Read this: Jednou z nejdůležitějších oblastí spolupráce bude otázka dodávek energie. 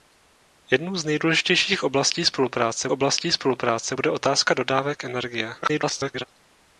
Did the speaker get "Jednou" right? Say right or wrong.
right